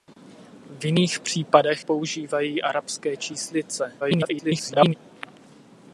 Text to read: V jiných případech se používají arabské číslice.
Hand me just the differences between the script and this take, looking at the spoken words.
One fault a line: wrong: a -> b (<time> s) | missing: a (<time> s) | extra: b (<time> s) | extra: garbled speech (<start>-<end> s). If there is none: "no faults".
missing: se (1.9 s)
extra: garbled speech (4.0-4.9 s)